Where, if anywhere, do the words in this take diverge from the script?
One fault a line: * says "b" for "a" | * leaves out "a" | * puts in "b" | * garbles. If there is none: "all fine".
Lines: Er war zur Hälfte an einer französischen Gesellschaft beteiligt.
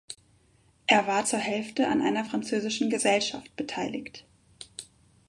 all fine